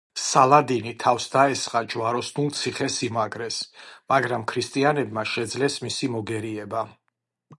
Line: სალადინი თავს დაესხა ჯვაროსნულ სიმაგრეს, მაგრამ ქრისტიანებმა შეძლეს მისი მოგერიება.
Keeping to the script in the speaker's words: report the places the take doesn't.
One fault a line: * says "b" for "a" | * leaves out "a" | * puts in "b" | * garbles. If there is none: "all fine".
* puts in "ციხე"